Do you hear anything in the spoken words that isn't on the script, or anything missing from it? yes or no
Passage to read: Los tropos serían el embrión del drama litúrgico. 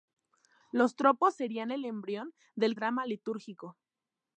no